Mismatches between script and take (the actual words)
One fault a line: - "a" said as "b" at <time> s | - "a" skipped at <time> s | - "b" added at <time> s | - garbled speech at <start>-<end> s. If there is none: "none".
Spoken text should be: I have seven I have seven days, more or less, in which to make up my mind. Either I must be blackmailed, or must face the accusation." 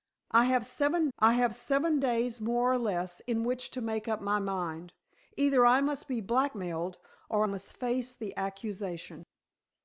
none